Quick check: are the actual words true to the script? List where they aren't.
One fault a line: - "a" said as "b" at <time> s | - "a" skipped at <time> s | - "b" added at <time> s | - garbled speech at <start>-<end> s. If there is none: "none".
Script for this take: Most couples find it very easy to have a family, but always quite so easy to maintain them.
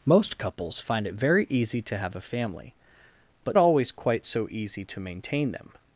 none